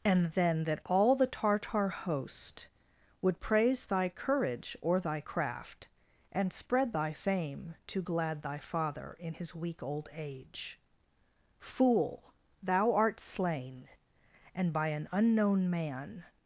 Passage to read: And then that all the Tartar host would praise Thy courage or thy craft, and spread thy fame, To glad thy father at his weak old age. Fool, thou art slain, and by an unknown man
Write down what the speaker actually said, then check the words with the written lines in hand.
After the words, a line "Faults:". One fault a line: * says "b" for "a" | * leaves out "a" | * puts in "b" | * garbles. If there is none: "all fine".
And then that all the Tartar host would praise Thy courage or thy craft, and spread thy fame, To glad thy father in his weak old age. Fool, thou art slain, and by an unknown man
Faults:
* says "in" for "at"